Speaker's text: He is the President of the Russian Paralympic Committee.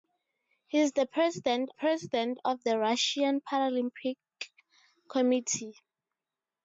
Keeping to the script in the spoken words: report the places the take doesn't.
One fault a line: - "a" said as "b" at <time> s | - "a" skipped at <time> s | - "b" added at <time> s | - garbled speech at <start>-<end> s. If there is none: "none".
- "President" added at 1.7 s